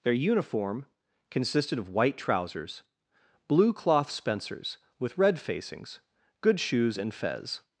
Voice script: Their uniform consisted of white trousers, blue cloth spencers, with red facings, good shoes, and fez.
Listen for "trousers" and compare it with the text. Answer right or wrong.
right